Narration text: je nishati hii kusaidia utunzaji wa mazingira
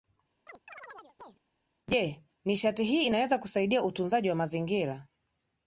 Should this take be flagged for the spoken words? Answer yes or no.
yes